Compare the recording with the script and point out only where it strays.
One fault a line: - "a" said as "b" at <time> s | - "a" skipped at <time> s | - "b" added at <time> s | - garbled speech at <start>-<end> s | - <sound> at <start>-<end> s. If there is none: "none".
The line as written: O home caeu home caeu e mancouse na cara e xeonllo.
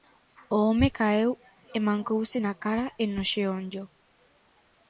- "home caeu" skipped at 1.3 s
- "no" added at 3.1 s